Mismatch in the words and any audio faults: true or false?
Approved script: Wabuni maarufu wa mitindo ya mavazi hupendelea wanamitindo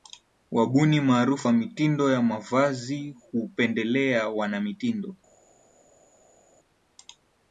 false